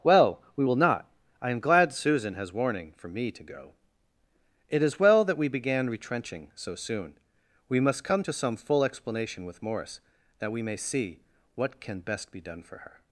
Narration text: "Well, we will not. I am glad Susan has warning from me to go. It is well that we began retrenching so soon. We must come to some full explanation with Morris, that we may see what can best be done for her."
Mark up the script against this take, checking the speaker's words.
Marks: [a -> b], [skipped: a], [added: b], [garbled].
"Well, we will not. I am glad Susan has warning [from -> for] me to go. It is well that we began retrenching so soon. We must come to some full explanation with Morris, that we may see what can best be done for her."